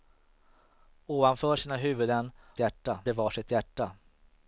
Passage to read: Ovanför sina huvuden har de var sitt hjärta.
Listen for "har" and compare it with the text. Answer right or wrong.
wrong